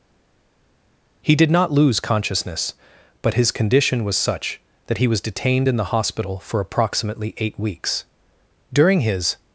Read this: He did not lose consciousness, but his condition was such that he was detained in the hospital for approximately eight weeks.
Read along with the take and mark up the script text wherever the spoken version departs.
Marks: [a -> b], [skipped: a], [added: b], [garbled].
He did not lose consciousness, but his condition was such that he was detained in the hospital for approximately eight weeks. [added: During his]